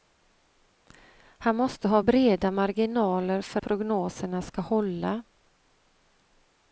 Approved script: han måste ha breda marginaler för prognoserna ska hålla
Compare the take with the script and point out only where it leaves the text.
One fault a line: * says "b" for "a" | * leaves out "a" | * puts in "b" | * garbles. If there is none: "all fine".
all fine